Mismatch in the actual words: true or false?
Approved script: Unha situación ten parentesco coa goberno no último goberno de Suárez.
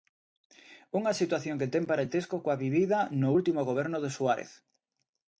true